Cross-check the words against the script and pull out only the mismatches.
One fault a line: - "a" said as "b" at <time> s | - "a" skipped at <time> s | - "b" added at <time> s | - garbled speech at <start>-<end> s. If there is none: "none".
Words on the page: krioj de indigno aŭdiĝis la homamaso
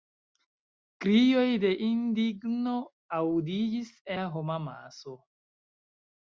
none